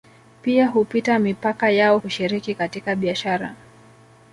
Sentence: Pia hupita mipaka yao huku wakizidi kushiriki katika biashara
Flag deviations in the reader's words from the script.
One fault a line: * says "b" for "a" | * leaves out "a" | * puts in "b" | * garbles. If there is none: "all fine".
* leaves out "huku wakizidi"